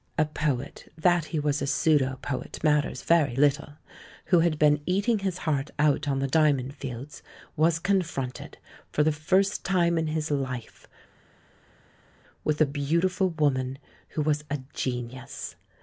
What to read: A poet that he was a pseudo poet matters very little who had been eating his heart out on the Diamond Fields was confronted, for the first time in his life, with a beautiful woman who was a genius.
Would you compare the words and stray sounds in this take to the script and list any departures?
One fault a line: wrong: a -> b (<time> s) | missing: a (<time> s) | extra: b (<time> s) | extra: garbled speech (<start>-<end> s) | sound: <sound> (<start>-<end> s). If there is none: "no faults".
no faults